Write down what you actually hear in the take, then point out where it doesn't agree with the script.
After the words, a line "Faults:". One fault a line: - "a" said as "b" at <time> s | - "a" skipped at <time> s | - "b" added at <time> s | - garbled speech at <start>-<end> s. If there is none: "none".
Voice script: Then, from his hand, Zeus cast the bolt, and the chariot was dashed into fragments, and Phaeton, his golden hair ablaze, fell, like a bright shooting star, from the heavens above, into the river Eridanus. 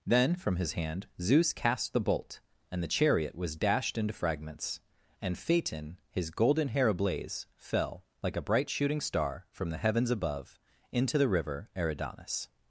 Then, from his hand, Zeus cast the bolt, and the chariot was dashed into fragments, and Phaeton, his golden hair ablaze, fell, like a bright shooting star, from the heavens above, into the river Eridanus.
Faults:
none